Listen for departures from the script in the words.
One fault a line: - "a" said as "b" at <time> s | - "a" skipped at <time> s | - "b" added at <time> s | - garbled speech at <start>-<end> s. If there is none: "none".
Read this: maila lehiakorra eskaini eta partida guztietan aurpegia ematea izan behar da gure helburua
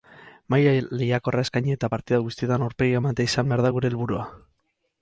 none